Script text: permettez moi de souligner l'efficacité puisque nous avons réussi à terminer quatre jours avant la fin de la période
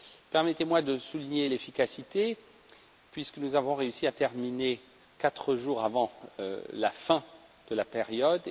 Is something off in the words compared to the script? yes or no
no